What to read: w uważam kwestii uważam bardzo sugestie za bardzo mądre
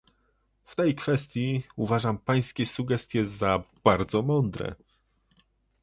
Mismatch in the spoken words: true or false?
true